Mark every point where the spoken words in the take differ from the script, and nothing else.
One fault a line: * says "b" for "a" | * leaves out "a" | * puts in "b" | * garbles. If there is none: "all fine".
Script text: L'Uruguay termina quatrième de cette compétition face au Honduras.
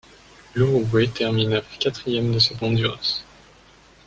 * leaves out "compétition face au"